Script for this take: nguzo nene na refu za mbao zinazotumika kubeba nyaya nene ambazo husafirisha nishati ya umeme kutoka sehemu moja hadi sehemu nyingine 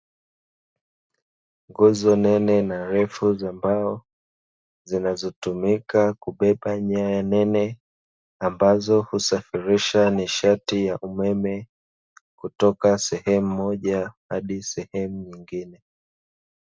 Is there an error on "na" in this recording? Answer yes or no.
no